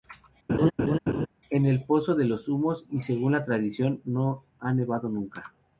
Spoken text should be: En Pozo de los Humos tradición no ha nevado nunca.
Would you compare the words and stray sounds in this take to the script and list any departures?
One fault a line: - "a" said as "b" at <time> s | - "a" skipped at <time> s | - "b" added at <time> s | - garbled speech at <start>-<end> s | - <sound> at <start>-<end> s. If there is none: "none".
- laugh at 0.5-1.3 s
- "el" added at 1.6 s
- "y según la" added at 2.9 s